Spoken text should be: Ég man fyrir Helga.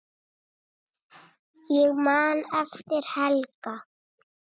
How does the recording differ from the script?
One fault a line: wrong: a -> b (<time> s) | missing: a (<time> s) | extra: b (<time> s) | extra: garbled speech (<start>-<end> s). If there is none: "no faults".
wrong: fyrir -> eftir (2.6 s)